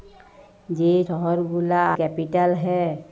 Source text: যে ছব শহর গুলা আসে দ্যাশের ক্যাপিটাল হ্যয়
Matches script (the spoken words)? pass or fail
fail